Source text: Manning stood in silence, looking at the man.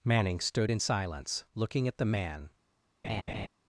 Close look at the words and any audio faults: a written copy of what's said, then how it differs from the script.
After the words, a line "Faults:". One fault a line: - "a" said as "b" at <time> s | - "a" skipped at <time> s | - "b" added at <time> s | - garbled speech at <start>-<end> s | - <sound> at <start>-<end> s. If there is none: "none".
Manning stood in silence, looking at the man.
Faults:
- laugh at 3.0-3.5 s